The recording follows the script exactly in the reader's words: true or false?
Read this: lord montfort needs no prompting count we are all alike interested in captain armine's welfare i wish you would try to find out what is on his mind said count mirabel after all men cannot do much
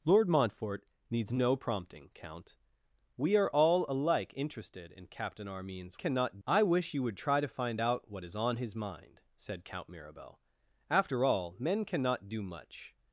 false